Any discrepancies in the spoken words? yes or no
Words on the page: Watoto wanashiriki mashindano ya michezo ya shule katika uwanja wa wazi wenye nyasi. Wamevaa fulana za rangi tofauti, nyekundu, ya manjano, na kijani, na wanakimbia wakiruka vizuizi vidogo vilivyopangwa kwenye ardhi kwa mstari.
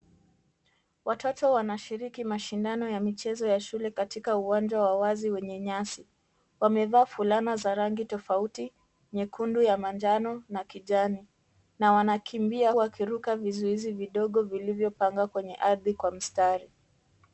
no